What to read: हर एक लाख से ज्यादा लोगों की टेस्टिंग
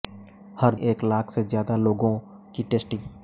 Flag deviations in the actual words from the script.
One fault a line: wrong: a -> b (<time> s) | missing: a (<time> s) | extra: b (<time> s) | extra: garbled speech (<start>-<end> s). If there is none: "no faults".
no faults